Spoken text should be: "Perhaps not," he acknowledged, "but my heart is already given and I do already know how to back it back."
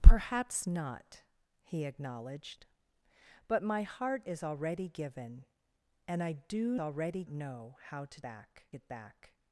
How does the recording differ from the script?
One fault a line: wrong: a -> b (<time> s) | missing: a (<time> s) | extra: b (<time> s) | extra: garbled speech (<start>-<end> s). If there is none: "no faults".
no faults